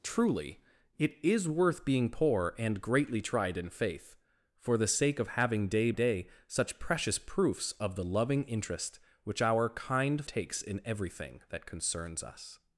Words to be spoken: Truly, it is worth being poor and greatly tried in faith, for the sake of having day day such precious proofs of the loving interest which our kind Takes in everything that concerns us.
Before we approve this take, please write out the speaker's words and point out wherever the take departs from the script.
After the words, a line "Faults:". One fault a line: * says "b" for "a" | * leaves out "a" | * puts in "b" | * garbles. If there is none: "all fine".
Truly, it is worth being poor and greatly tried in faith, for the sake of having day day such precious proofs of the loving interest which our kind Takes in everything that concerns us.
Faults:
all fine